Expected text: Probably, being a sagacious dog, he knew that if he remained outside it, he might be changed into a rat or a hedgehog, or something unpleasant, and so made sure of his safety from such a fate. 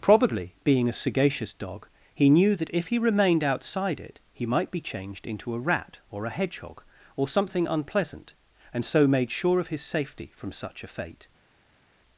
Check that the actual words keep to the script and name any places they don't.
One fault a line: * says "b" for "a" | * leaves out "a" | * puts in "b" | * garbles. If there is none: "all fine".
all fine